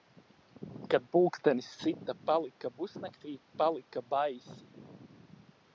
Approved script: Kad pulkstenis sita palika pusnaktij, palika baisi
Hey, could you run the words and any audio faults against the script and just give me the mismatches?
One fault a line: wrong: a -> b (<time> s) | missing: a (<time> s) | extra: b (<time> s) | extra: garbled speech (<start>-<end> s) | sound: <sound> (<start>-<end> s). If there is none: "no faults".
no faults